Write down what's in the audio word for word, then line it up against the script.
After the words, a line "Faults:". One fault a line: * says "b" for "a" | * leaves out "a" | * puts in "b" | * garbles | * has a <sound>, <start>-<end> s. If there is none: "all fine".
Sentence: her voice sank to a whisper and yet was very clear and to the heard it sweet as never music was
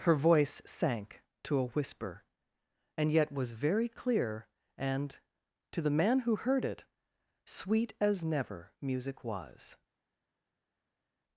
her voice sank to a whisper and yet was very clear and to the man who heard it sweet as never music was
Faults:
* puts in "man who"